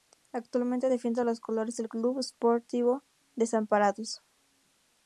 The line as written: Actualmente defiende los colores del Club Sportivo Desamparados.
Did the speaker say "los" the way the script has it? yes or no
yes